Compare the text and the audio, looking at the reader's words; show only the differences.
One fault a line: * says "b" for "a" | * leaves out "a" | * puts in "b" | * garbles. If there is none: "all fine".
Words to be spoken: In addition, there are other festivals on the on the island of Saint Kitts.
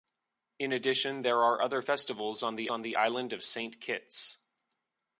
all fine